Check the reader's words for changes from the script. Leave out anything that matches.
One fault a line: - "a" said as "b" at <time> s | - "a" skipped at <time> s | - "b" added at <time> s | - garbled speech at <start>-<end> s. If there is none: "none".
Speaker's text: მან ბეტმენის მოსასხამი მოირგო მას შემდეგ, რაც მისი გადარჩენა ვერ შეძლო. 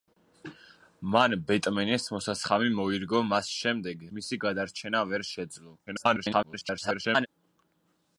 - "რაც" skipped at 4.0 s
- garbled speech at 5.9-7.3 s